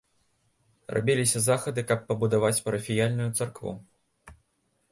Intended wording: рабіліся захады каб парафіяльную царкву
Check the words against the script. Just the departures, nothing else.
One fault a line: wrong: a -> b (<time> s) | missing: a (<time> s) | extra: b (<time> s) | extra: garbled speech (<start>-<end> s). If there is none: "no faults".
extra: пабудаваць (2.1 s)